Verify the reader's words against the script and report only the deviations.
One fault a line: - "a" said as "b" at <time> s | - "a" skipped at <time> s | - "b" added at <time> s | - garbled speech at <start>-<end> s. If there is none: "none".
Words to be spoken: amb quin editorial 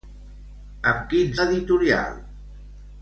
none